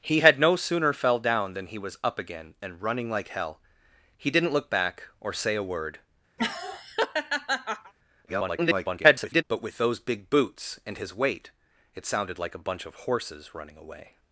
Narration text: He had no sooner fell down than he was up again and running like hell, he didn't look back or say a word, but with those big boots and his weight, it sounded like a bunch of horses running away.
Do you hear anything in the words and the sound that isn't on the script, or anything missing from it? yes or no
yes